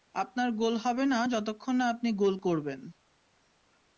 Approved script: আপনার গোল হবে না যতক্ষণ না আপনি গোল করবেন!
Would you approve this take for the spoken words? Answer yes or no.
yes